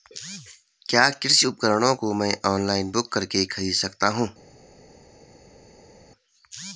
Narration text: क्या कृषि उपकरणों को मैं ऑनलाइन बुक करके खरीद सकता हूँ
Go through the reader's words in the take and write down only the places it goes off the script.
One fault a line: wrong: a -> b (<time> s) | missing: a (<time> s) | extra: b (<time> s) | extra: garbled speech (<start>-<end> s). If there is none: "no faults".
no faults